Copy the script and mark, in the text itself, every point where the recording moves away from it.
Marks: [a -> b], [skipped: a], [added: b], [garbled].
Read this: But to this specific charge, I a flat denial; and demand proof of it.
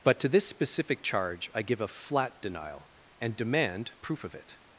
But to this specific charge, I [added: give] a flat denial; and demand proof of it.